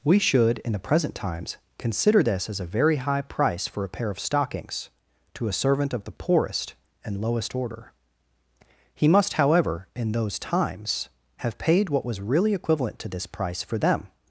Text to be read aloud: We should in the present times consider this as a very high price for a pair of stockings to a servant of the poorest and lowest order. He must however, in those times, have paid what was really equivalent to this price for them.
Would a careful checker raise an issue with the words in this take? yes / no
no